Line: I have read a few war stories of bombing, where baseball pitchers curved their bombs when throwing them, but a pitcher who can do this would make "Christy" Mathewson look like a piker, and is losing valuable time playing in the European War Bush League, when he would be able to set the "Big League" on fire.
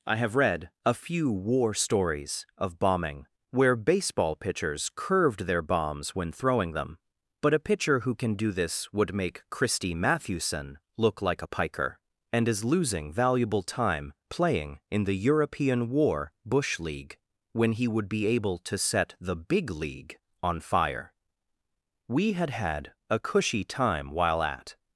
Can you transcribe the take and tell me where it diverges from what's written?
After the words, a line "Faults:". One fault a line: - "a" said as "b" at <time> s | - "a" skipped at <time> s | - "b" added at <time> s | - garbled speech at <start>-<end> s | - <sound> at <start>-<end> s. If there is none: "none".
I have read a few war stories of bombing, where baseball pitchers curved their bombs when throwing them, but a pitcher who can do this would make "Christy" Mathewson look like a piker, and is losing valuable time playing in the European War Bush League, when he would be able to set the "Big League" on fire. We had had a cushy time while at
Faults:
- "We had had a cushy time while at" added at 22.1 s